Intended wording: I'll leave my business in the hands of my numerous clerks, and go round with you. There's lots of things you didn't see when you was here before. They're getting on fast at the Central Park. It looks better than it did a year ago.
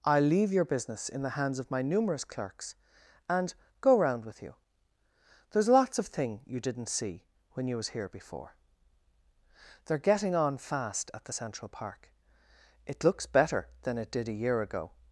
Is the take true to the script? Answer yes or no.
no